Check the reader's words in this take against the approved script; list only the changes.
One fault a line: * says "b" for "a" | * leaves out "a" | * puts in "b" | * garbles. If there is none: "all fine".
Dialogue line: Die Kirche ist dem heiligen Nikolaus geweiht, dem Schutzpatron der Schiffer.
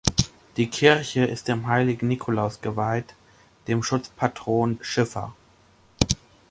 * leaves out "der"